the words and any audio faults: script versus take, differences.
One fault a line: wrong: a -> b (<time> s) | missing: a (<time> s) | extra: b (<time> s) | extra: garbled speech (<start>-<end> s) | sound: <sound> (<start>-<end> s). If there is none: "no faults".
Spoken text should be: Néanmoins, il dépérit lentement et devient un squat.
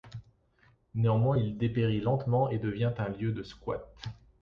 extra: lieu de (3.1 s)